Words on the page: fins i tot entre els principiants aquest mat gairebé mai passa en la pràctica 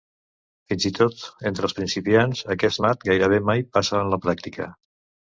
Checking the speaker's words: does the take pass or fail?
pass